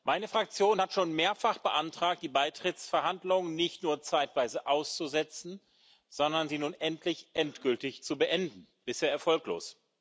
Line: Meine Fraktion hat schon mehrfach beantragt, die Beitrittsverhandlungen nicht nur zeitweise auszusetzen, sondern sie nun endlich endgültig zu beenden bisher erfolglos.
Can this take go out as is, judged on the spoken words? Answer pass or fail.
pass